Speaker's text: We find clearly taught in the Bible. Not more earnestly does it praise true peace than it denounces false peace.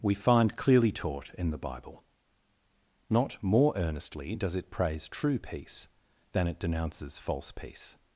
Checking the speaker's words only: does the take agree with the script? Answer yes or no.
yes